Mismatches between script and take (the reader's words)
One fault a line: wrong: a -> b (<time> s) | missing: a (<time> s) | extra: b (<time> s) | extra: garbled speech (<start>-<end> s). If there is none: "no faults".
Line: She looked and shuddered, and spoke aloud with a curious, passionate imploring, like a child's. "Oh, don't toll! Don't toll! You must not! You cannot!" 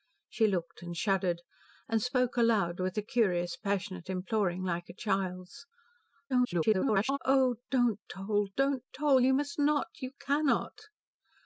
extra: garbled speech (6.3-7.2 s)